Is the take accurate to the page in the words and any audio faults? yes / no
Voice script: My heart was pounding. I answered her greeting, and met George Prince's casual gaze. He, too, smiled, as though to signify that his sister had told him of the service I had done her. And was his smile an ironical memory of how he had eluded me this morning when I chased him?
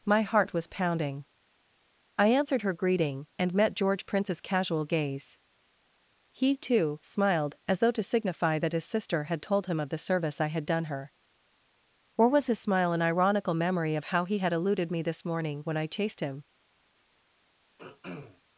no